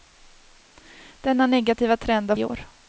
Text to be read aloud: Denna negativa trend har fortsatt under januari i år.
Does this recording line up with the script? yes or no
no